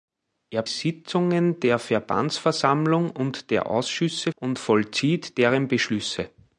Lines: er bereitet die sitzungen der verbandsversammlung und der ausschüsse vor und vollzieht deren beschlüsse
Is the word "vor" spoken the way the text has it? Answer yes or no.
no